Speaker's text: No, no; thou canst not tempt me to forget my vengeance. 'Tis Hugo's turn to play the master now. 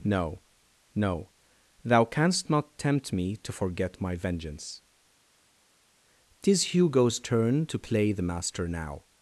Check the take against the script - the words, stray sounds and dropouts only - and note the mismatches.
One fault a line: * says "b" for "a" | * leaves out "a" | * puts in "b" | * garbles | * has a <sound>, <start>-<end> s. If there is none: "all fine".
all fine